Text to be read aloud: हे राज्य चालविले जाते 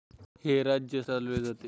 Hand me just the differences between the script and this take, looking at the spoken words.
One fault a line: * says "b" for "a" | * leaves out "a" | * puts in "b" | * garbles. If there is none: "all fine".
all fine